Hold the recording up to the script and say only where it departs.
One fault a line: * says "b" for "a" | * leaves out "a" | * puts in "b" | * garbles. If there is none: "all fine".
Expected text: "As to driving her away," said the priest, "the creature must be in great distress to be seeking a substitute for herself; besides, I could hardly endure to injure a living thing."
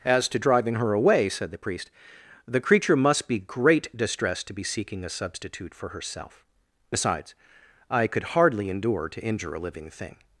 * leaves out "in"